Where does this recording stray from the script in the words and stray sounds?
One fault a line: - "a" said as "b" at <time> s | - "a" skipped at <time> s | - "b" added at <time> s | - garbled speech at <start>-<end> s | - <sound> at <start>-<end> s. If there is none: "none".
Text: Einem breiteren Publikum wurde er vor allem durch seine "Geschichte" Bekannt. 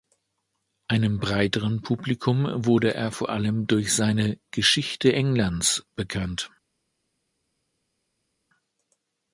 - "Englands" added at 5.1 s